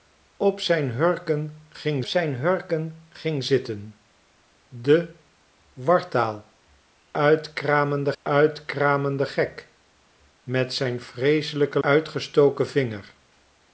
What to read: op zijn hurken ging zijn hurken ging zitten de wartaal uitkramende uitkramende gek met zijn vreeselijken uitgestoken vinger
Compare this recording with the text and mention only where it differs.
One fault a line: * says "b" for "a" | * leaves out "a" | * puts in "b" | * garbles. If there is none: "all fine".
all fine